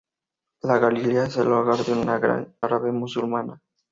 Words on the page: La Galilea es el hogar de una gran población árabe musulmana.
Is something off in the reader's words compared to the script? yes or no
yes